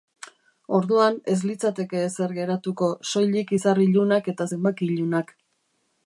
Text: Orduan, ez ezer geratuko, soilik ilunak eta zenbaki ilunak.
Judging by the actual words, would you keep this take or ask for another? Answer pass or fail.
fail